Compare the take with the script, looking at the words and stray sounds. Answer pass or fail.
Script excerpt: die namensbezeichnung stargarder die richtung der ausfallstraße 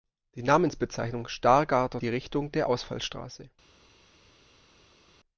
pass